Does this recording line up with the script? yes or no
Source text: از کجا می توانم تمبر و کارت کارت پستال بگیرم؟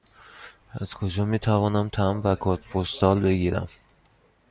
no